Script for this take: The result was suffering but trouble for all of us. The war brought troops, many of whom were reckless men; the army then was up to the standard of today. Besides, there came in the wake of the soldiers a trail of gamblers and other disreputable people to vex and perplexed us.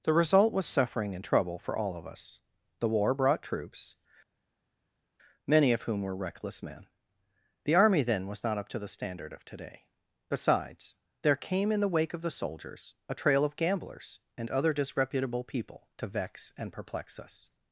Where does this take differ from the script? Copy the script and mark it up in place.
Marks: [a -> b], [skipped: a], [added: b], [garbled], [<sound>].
The result was suffering [but -> and] trouble for all of us. The war brought troops, many of whom were reckless men; the army then was [added: not] up to the standard of today. Besides, there came in the wake of the soldiers a trail of gamblers and other disreputable people to vex and [perplexed -> perplex] us.